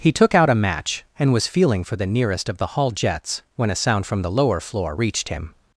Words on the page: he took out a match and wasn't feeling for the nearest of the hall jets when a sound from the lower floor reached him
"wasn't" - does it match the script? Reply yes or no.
no